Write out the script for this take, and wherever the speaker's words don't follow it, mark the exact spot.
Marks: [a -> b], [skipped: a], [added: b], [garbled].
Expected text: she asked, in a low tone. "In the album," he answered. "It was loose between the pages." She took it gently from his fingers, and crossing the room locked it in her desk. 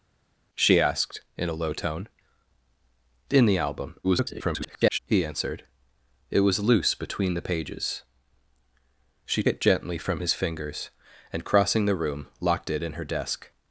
she asked, in a low tone. "In the album," [garbled] he answered. "It was loose between the pages." She [skipped: took] it gently from his fingers, and crossing the room locked it in her desk.